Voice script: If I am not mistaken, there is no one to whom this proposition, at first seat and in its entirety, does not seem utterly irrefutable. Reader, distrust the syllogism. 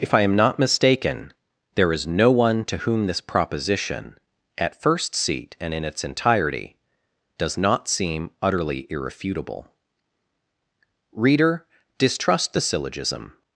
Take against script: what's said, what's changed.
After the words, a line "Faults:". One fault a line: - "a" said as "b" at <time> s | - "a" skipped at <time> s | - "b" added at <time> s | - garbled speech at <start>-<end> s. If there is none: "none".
If I am not mistaken, there is no one to whom this proposition, at first seat and in its entirety, does not seem utterly irrefutable. Reader, distrust the syllogism.
Faults:
none